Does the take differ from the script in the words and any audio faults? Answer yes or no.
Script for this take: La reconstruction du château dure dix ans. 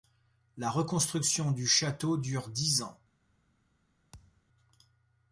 yes